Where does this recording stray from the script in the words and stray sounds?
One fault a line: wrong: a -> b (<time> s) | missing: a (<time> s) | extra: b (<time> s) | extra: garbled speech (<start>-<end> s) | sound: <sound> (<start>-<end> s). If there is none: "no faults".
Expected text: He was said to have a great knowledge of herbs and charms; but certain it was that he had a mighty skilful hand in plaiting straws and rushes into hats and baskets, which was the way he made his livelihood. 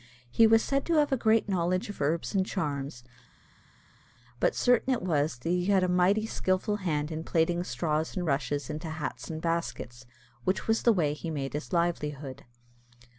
no faults